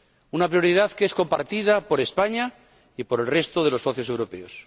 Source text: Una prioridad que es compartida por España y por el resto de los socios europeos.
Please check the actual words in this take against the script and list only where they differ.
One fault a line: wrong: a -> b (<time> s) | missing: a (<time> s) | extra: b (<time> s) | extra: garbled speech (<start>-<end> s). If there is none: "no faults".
no faults